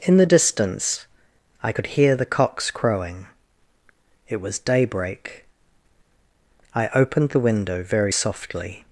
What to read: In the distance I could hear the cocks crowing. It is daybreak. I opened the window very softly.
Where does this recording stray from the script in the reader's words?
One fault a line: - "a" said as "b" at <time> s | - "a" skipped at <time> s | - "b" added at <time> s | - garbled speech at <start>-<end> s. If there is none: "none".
- "is" said as "was" at 4.4 s